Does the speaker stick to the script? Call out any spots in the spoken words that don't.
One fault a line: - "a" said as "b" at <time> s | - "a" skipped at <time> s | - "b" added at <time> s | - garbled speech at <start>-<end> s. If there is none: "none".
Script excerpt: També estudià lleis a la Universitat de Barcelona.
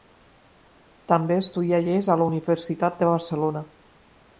none